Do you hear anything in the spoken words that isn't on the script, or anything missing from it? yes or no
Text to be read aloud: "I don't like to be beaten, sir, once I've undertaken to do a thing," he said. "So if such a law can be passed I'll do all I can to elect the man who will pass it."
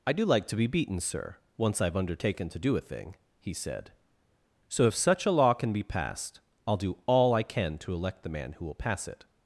yes